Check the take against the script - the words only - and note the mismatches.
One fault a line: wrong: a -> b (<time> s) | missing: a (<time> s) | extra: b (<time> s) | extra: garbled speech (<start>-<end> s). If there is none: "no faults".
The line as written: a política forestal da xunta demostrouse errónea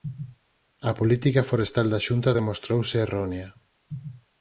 no faults